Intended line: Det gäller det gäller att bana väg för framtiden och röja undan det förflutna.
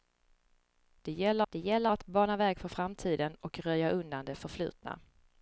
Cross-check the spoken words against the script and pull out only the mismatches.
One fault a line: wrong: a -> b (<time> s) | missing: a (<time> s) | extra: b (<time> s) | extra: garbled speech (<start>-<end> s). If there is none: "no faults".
no faults